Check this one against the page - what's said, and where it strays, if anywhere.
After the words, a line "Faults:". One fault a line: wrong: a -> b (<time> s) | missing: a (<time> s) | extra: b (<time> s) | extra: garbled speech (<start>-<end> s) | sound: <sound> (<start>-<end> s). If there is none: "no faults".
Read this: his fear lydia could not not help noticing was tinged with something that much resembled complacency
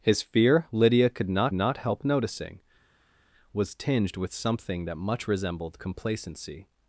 his fear lydia could not not help noticing was tinged with something that much resembled complacency
Faults:
no faults